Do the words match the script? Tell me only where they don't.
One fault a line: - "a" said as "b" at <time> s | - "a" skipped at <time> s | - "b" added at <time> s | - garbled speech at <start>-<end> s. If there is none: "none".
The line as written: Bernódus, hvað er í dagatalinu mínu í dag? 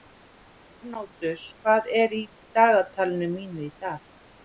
none